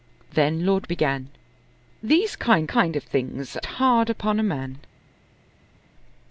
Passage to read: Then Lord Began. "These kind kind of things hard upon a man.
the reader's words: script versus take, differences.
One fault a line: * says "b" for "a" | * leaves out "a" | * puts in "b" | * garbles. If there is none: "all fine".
all fine